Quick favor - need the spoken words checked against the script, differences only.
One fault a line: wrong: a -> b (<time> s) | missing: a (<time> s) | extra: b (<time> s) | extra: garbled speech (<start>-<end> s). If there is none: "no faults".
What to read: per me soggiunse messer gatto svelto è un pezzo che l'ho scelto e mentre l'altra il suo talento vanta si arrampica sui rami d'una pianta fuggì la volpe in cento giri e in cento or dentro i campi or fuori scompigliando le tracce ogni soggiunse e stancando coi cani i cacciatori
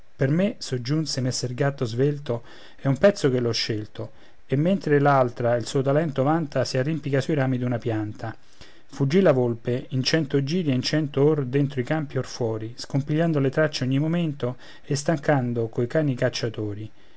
wrong: soggiunse -> momento (14.0 s)